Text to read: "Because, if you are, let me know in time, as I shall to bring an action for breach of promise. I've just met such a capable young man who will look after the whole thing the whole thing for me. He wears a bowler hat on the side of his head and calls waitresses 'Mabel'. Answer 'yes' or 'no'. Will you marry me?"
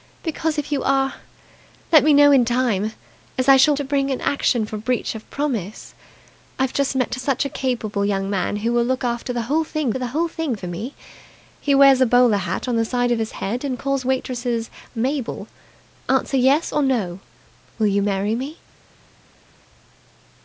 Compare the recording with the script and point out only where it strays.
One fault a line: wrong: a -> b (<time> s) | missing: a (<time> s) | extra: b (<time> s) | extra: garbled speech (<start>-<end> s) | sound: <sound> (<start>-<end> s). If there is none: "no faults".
no faults